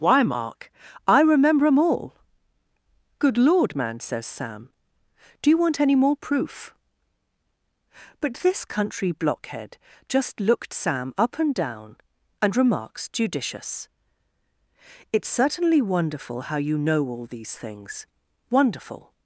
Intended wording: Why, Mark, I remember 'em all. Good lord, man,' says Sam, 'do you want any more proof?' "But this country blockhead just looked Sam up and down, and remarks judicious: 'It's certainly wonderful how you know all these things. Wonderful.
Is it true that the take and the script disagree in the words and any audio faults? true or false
false